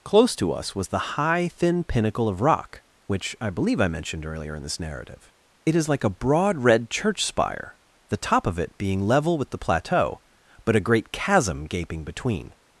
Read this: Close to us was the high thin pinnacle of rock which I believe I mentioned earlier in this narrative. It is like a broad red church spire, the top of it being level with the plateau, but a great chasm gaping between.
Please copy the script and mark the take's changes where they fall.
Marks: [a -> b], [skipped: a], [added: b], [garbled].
Close to us was the high thin pinnacle of rock which I believe I mentioned earlier in this narrative. It is like a broad red church spire, the top of it being level with the plateau, but a great chasm gaping between.